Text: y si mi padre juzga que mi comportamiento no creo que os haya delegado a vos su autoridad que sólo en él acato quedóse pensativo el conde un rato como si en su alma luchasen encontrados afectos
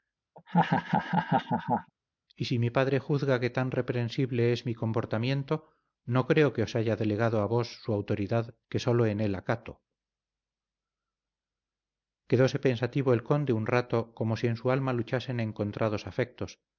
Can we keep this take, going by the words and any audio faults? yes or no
no